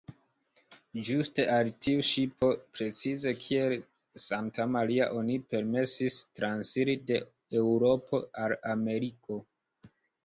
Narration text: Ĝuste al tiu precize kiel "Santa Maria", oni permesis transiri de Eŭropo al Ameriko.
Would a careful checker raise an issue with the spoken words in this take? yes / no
yes